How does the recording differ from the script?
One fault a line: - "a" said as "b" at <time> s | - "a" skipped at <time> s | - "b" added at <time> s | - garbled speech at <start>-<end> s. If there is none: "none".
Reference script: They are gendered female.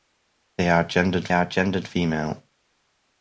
- "are gendered" added at 1.3 s